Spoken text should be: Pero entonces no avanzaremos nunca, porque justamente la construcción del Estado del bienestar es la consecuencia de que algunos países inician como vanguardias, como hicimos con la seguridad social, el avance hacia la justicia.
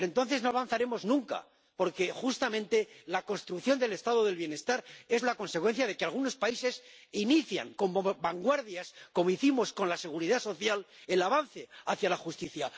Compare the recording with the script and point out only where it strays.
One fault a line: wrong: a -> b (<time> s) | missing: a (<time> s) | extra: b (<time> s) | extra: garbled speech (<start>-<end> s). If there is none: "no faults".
no faults